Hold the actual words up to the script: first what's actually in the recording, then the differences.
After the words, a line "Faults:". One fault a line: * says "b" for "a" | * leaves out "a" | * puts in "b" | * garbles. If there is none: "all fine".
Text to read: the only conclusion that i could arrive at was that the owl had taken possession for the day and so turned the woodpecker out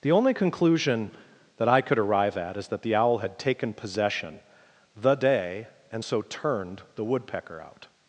the only conclusion that i could arrive at is that the owl had taken possession the day and so turned the woodpecker out
Faults:
* says "is" for "was"
* leaves out "for"